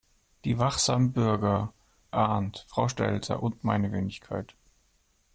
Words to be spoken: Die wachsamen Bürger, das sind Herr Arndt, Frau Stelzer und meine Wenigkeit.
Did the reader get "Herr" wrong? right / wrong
wrong